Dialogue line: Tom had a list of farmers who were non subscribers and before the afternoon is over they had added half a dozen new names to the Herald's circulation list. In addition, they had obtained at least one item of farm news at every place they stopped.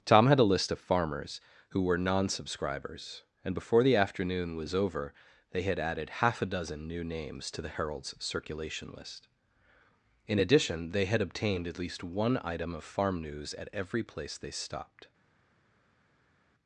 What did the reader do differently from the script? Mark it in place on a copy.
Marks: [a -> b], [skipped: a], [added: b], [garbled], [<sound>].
Tom had a list of farmers who were non subscribers and before the afternoon [is -> was] over they had added half a dozen new names to the Herald's circulation list. In addition, they had obtained at least one item of farm news at every place they stopped.